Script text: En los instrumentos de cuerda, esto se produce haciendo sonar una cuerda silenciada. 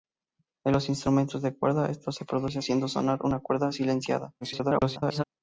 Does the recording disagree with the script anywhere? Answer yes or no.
yes